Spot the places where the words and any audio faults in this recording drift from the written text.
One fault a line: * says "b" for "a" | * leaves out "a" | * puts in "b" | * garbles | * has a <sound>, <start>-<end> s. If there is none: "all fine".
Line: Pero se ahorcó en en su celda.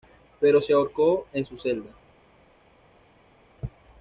* leaves out "en"